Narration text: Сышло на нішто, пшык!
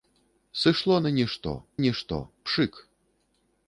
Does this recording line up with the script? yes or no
no